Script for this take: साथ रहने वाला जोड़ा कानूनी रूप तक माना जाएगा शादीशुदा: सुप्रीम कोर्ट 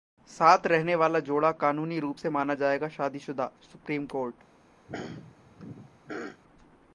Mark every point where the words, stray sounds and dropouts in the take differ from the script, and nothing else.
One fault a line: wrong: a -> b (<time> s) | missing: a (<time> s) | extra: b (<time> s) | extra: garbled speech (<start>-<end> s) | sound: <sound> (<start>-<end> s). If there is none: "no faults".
wrong: तक -> से (2.1 s)
sound: throat clearing (4.9-6.4 s)